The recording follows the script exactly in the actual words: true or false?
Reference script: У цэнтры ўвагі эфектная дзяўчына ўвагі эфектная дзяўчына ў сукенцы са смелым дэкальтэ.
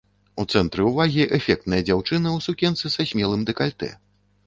false